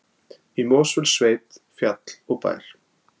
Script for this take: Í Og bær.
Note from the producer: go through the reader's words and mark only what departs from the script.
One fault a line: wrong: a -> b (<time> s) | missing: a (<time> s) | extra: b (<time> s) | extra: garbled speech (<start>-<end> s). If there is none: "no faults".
extra: Mosfellssveit fjall (0.7 s)